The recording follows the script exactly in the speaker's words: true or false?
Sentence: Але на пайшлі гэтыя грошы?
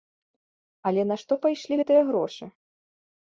false